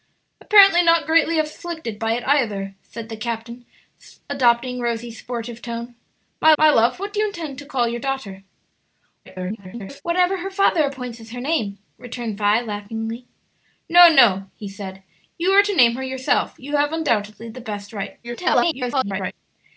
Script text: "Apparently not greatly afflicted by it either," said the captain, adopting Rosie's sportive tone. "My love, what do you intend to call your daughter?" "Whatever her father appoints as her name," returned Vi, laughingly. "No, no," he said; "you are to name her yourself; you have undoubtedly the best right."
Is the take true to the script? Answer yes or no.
no